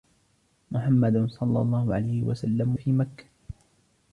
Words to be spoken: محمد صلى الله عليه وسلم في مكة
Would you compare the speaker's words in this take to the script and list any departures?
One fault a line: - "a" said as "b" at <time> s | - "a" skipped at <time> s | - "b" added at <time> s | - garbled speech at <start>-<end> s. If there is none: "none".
none